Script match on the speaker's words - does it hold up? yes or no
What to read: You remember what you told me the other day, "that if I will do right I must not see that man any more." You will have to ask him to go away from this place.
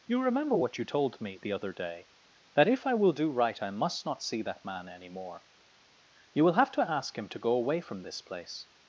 yes